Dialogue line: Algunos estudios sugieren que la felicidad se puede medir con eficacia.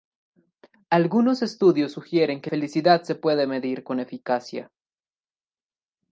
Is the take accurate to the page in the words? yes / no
no